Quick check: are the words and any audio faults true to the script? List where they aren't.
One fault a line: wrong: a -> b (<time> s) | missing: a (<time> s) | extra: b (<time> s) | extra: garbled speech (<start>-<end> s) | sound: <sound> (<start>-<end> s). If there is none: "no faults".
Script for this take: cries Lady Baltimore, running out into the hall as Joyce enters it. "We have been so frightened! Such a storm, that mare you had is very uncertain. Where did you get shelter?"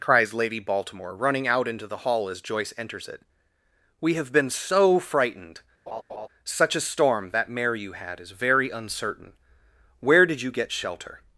sound: laugh (5.9-6.3 s)